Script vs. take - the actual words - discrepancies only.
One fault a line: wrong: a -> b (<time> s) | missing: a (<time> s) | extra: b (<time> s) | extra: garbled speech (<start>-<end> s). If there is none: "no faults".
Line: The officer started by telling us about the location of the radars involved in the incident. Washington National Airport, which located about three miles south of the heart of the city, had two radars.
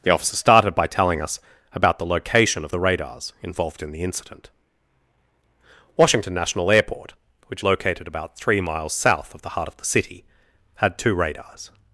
no faults